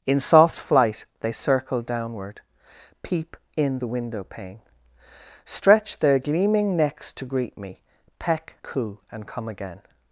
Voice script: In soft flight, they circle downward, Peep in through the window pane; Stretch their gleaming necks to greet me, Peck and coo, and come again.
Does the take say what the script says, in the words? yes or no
no